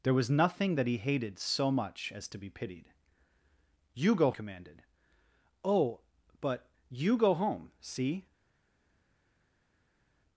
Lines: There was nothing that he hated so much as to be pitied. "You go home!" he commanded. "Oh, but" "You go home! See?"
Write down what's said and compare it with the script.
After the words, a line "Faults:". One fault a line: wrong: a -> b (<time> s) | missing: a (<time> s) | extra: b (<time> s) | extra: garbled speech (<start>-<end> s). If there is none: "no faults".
There was nothing that he hated so much as to be pitied. "You go commanded. "Oh, but" "You go home! See?"
Faults:
missing: home he (4.3 s)